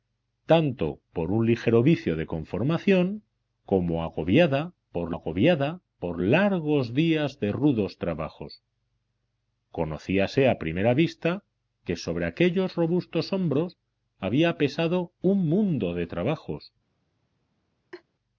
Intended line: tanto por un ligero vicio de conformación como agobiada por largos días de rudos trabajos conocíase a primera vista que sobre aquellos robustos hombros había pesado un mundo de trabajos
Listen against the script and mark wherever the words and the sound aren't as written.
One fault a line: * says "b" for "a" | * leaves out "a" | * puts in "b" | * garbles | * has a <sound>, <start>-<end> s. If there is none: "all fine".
* puts in "agobiada por"
* has a laugh, 17.9-18.0 s